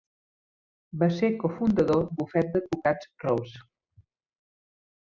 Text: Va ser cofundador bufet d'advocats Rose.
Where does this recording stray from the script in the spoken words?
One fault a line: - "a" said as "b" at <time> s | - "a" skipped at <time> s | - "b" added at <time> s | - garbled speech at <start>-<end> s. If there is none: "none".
none